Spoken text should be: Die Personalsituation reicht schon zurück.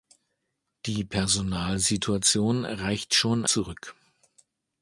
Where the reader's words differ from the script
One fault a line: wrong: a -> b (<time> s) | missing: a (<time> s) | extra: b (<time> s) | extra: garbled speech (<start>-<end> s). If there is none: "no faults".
no faults